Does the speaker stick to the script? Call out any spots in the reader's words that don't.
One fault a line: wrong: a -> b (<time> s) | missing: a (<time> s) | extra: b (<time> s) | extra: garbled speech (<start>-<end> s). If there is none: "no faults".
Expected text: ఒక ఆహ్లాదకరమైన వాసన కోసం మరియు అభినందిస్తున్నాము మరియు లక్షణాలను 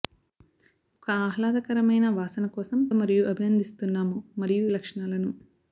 no faults